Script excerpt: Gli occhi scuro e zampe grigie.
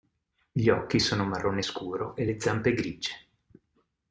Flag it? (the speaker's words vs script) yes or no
yes